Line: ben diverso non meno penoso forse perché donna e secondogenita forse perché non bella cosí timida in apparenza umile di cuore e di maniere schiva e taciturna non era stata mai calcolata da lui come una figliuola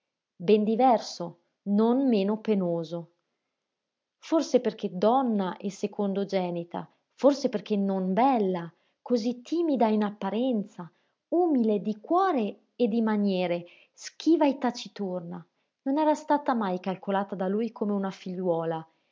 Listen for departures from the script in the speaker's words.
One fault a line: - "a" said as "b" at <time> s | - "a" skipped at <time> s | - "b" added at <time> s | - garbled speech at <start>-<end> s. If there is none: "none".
none